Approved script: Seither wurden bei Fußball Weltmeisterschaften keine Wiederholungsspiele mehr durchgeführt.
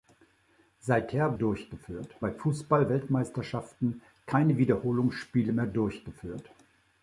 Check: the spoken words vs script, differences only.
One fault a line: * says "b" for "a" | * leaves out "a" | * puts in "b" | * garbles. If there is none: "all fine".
* says "durchgeführt" for "wurden"